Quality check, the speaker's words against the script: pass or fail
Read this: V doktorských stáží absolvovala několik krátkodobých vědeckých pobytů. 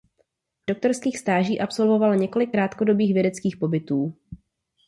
pass